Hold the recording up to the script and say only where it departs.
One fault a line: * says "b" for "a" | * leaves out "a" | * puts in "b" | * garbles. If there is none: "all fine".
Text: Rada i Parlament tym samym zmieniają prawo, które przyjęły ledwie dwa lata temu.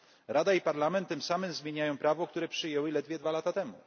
all fine